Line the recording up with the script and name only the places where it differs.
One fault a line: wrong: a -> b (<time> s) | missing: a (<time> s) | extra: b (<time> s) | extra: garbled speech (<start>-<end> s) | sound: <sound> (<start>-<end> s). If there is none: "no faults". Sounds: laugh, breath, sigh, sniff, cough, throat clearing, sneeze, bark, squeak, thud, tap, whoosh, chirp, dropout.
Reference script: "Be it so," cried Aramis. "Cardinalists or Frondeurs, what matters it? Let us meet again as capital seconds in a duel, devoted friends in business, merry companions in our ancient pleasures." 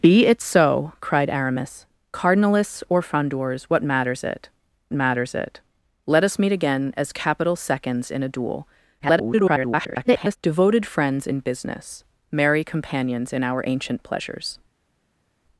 extra: matters it (4.9 s)
extra: garbled speech (9.0-10.4 s)